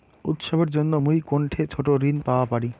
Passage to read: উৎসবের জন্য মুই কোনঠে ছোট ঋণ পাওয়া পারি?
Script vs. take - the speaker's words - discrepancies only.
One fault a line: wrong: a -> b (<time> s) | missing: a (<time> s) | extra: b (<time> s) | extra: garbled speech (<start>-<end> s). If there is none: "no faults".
no faults